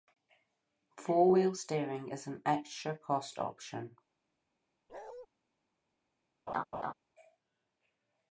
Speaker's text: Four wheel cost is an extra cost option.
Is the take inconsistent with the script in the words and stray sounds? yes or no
yes